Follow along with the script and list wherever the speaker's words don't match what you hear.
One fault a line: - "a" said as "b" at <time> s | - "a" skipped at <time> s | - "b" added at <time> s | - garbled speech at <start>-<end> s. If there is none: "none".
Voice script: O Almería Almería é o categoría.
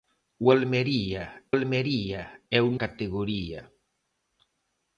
none